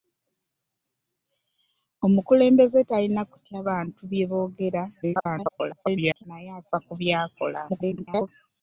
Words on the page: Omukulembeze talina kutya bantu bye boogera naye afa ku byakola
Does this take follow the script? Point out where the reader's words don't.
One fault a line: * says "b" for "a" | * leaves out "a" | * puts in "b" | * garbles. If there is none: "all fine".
* garbles
* garbles